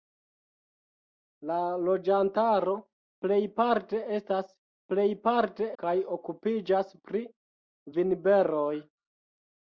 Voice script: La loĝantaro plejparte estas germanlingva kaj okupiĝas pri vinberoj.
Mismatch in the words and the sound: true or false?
true